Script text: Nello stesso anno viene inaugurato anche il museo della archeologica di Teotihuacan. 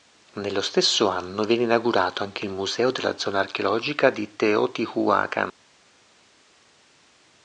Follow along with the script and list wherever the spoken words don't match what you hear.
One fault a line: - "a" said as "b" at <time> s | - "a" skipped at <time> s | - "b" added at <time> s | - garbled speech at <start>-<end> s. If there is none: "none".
- "zona" added at 3.2 s